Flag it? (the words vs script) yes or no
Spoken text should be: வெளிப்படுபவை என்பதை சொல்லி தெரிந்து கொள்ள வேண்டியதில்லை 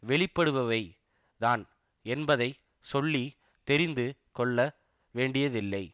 yes